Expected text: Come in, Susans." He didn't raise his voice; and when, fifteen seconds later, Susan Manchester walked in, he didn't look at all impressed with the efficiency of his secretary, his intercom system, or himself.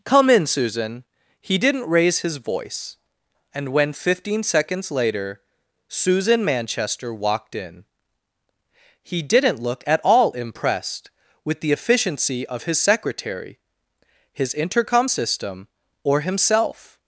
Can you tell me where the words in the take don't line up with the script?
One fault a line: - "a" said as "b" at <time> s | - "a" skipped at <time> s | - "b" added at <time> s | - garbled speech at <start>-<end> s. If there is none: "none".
- "Susans" said as "Susan" at 0.5 s